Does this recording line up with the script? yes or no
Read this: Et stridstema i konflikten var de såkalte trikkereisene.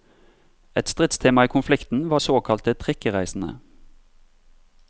no